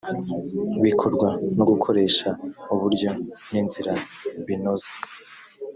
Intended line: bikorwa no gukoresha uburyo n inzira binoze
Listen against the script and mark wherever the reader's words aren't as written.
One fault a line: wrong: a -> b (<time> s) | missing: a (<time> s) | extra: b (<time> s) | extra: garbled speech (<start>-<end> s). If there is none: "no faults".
no faults